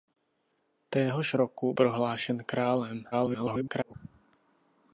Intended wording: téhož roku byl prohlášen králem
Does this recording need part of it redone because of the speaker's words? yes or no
yes